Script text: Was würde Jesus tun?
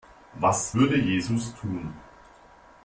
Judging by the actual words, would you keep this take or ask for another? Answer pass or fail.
pass